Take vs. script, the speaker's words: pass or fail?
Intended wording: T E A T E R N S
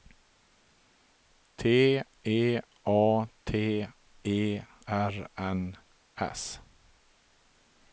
pass